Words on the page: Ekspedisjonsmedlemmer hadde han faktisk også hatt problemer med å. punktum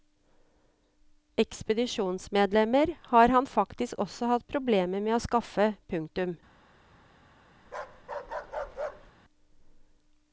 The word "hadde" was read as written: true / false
false